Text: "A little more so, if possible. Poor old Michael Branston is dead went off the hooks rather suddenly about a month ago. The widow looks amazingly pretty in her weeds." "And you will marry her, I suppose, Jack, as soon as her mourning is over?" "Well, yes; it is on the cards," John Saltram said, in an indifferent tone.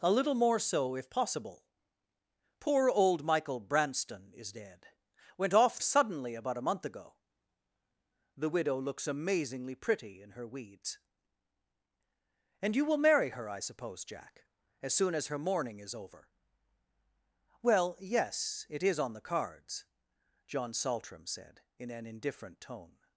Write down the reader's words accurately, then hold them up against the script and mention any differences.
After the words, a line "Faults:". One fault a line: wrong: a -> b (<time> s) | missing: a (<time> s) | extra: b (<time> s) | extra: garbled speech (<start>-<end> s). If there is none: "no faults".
"A little more so, if possible. Poor old Michael Branston is dead went off suddenly about a month ago. The widow looks amazingly pretty in her weeds." "And you will marry her, I suppose, Jack, as soon as her mourning is over?" "Well, yes; it is on the cards," John Saltram said, in an indifferent tone.
Faults:
missing: the hooks rather (5.8 s)